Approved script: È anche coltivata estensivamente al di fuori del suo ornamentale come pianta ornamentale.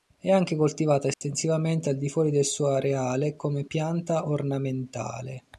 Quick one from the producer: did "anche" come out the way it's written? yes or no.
yes